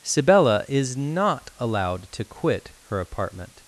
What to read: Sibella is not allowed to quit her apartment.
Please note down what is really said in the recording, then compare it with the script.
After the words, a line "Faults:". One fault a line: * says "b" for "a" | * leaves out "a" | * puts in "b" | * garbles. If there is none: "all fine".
Sibella is not allowed to quit her apartment.
Faults:
all fine